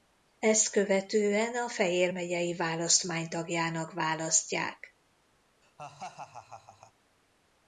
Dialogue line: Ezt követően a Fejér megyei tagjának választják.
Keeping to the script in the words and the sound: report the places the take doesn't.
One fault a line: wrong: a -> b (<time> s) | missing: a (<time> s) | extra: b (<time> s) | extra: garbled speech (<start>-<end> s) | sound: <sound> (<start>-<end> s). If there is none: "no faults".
extra: választmány (2.5 s)
sound: laugh (5.6-6.9 s)